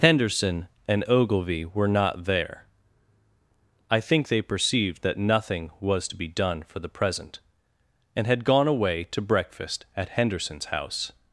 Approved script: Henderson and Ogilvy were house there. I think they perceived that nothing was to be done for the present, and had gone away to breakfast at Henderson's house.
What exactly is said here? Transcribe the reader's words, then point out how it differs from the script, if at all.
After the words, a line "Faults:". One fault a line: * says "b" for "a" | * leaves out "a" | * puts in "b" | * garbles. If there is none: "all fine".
Henderson and Ogilvy were not there. I think they perceived that nothing was to be done for the present, and had gone away to breakfast at Henderson's house.
Faults:
* says "not" for "house"